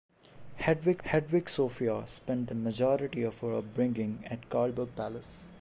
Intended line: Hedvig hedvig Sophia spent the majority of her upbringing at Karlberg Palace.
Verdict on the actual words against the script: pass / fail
pass